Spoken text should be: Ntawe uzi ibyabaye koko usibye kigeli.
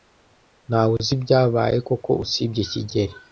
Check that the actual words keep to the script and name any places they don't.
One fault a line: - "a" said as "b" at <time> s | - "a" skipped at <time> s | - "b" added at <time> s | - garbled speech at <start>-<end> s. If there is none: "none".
none